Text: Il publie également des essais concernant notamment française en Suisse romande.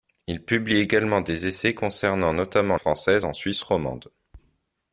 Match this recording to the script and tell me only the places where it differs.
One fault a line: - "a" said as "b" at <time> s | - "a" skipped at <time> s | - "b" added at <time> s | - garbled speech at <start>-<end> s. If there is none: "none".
none